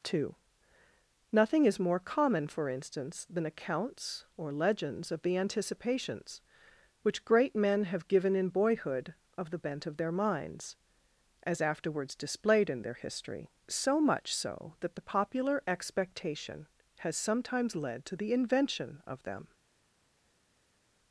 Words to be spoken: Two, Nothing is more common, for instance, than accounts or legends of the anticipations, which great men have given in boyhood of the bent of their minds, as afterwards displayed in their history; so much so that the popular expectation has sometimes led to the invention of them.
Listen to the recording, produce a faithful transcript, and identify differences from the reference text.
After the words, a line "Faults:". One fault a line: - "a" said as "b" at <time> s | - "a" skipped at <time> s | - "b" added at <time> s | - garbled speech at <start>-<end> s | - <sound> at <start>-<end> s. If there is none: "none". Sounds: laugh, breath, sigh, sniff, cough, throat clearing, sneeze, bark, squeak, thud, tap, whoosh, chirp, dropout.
Two, Nothing is more common, for instance, than accounts or legends of the anticipations, which great men have given in boyhood of the bent of their minds, as afterwards displayed in their history; so much so that the popular expectation has sometimes led to the invention of them.
Faults:
none